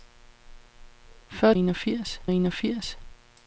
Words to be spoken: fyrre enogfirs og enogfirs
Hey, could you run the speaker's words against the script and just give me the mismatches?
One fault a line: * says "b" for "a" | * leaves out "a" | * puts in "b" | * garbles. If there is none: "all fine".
all fine